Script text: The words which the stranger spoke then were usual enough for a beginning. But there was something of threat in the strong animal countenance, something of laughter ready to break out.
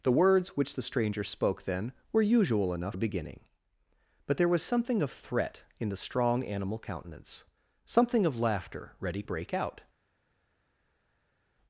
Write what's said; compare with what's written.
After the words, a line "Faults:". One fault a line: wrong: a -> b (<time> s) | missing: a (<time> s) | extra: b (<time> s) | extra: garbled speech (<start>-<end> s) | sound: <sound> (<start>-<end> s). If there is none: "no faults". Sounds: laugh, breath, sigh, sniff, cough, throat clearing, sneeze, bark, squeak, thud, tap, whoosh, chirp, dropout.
The words which the stranger spoke then were usual enough a beginning. But there was something of threat in the strong animal countenance, something of laughter ready break out.
Faults:
missing: for (3.0 s)
missing: to (9.2 s)